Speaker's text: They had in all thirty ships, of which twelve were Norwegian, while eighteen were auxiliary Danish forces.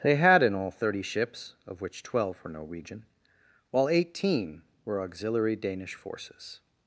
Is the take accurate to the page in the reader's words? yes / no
yes